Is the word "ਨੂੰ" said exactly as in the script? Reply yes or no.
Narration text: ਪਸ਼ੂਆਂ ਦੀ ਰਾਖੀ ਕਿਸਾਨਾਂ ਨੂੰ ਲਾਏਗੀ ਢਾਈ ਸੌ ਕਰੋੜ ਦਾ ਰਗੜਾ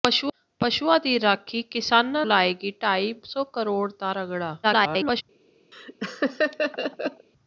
no